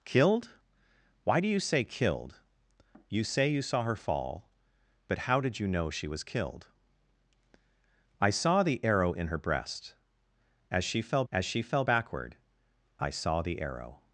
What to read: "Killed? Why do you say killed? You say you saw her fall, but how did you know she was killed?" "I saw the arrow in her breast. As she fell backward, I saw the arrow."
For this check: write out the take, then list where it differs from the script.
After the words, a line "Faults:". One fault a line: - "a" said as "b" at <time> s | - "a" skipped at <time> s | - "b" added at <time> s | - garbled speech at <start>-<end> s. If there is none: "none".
"Killed? Why do you say killed? You say you saw her fall, but how did you know she was killed?" "I saw the arrow in her breast. As she fell as she fell backward, I saw the arrow."
Faults:
- "as she fell" added at 11.3 s